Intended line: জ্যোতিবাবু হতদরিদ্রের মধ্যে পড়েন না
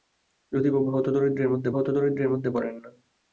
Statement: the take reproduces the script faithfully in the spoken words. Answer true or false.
false